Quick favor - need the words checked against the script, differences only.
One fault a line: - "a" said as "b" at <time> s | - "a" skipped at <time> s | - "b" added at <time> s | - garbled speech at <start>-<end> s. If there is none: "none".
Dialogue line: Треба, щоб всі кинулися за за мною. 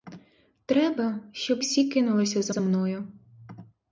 none